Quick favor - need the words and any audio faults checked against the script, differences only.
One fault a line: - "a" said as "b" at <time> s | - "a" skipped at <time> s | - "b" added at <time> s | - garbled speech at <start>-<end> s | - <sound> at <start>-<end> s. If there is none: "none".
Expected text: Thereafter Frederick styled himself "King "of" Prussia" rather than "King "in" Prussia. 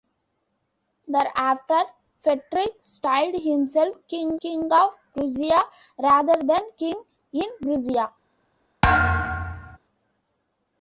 - "king" added at 4.4 s
- thud at 8.8-9.8 s